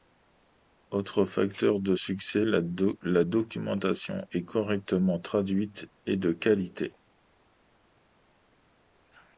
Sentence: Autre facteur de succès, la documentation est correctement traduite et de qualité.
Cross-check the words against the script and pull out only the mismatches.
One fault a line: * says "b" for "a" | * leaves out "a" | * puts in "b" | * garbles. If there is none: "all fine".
all fine